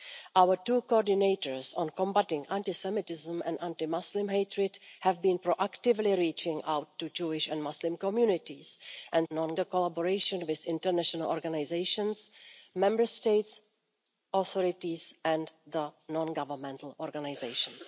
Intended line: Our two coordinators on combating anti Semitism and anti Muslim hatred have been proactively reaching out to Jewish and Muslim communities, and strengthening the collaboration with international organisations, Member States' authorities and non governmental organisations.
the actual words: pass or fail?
fail